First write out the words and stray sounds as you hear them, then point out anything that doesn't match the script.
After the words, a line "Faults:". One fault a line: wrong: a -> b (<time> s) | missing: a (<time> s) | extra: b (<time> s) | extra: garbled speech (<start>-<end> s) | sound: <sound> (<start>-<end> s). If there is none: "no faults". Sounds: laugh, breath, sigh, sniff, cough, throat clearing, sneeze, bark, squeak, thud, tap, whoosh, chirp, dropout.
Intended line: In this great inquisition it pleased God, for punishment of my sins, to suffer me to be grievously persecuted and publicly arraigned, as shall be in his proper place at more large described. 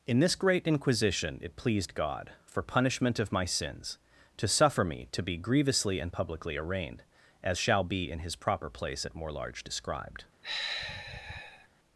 In this great inquisition it pleased God, for punishment of my sins, to suffer me to be grievously and publicly arraigned, as shall be in his proper place at more large described.
Faults:
missing: persecuted (6.0 s)
sound: sigh (10.4-11.7 s)